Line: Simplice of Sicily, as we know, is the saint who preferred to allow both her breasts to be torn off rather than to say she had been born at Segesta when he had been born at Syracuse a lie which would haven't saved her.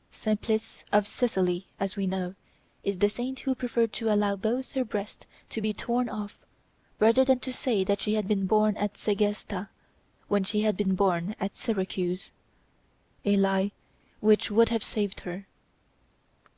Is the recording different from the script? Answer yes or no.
yes